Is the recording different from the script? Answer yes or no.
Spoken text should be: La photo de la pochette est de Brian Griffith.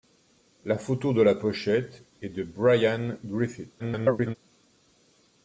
yes